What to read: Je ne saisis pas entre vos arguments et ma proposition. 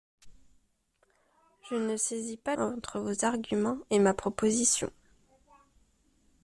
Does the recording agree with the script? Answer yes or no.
yes